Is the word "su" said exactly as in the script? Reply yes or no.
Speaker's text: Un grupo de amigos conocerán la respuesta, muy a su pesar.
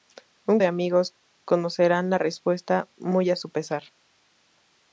yes